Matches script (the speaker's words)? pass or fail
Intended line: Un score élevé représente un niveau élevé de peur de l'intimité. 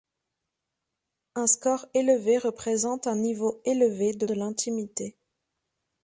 fail